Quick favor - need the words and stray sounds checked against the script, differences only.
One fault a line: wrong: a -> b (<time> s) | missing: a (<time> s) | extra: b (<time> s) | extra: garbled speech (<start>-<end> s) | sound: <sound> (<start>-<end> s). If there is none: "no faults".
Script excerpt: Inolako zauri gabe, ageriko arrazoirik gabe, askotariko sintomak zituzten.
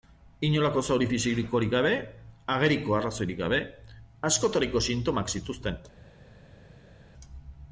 extra: fisikorik (1.1 s)